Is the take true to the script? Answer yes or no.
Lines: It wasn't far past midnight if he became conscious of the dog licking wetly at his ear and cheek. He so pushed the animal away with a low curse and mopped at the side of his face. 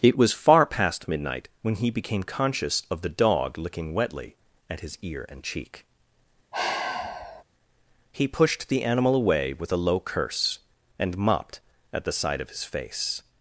no